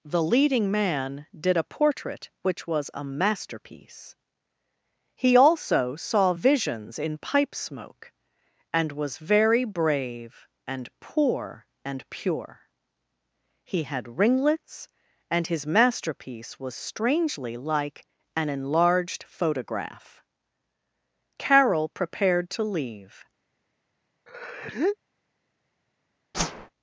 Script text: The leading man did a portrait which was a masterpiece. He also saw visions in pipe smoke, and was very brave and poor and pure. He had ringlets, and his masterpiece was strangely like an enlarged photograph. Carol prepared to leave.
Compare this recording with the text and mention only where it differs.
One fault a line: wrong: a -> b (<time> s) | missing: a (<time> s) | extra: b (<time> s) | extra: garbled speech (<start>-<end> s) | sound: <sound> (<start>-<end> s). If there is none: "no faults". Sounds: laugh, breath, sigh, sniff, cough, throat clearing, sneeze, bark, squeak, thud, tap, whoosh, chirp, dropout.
sound: sneeze (24.3-25.0 s)
sound: whoosh (26.3-26.7 s)